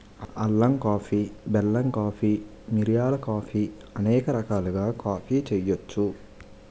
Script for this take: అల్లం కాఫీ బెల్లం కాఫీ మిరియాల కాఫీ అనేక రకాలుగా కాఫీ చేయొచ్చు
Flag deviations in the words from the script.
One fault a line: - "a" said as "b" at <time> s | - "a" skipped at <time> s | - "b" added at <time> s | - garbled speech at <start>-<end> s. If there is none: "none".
none